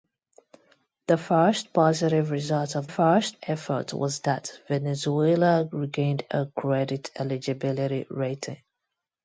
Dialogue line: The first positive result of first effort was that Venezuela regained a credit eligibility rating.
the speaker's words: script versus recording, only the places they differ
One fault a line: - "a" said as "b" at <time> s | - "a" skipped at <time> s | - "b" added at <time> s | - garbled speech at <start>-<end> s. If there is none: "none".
none